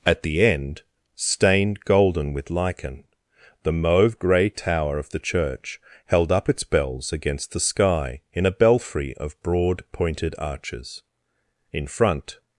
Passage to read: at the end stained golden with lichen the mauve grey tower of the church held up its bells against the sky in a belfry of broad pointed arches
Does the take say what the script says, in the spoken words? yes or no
no